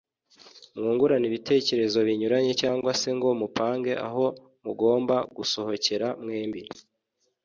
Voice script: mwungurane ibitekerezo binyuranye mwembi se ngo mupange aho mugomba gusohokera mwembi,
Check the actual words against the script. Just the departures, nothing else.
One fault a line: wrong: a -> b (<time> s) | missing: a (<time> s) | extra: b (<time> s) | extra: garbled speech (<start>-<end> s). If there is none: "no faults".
wrong: mwembi -> cyangwa (2.6 s)